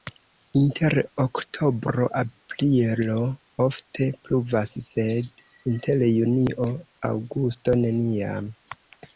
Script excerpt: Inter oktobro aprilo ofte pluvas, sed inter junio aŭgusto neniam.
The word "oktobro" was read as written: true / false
true